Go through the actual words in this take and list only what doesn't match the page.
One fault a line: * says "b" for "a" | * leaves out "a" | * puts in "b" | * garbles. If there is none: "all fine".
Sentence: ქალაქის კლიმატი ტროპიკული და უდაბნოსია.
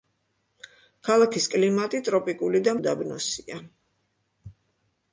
all fine